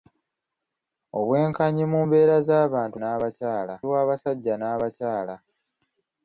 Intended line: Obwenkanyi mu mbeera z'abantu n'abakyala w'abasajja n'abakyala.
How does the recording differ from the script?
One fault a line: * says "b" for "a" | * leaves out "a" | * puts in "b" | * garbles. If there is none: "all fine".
all fine